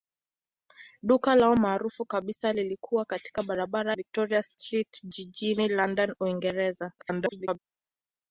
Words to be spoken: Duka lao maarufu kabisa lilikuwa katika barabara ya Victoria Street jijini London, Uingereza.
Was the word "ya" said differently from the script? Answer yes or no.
yes